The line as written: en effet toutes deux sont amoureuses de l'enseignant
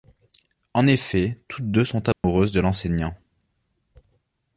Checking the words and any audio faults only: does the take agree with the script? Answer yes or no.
no